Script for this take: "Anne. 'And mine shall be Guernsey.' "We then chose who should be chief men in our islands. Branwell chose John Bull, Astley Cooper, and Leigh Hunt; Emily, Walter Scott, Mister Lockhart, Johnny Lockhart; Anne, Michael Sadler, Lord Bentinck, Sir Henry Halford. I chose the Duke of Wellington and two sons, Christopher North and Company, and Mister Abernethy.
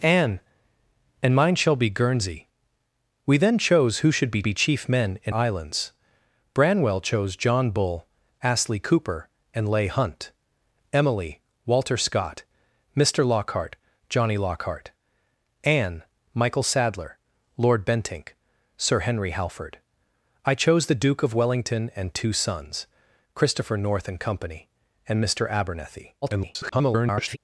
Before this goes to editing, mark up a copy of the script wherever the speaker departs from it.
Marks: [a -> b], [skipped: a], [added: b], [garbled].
"Anne. 'And mine shall be Guernsey.' "We then chose who should be [added: be] chief men in [skipped: our] islands. Branwell chose John Bull, Astley Cooper, and Leigh Hunt; Emily, Walter Scott, Mister Lockhart, Johnny Lockhart; Anne, Michael Sadler, Lord Bentinck, Sir Henry Halford. I chose the Duke of Wellington and two sons, Christopher North and Company, and Mister Abernethy. [garbled]